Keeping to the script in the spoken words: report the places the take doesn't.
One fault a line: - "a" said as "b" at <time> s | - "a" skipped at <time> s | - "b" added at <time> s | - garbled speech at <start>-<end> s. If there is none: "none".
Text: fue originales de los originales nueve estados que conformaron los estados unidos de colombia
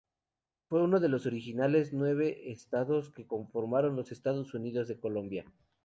- "originales" said as "uno" at 0.8 s